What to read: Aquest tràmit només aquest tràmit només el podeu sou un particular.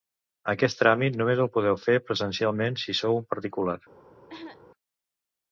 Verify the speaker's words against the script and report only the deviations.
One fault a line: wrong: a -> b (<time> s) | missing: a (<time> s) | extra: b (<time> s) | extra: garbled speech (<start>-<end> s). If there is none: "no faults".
wrong: aquest tràmit només el podeu -> el podeu fer presencialment si (1.4 s)